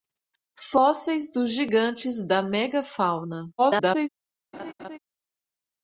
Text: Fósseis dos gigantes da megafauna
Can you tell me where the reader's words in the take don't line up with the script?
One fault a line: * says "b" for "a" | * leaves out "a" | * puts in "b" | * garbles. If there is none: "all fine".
* garbles